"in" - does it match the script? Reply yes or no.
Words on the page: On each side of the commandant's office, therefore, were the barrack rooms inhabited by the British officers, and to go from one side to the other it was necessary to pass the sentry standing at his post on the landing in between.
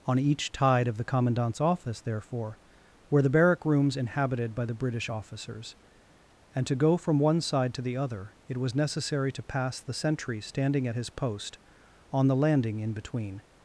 yes